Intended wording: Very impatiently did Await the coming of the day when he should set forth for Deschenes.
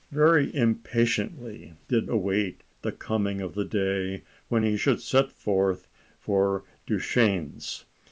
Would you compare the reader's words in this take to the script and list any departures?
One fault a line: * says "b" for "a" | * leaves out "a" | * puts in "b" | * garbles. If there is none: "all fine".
all fine